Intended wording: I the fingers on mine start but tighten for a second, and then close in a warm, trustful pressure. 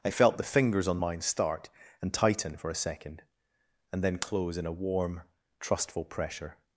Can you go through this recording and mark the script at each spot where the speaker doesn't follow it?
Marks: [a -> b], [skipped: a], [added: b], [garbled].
I [added: felt] the fingers on mine start [but -> and] tighten for a second, and then close in a warm, trustful pressure.